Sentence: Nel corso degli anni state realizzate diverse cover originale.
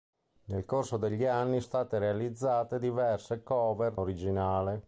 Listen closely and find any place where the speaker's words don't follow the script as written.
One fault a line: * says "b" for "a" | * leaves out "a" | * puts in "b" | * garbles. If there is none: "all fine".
all fine